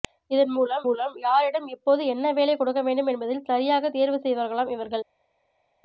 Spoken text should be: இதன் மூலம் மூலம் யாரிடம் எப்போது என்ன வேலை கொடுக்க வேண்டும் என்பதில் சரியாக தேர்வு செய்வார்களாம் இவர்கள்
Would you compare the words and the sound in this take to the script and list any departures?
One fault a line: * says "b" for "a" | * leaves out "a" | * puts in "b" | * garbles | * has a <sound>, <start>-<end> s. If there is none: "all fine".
all fine